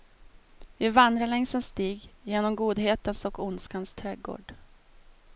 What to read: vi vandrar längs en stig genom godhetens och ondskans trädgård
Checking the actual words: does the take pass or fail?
pass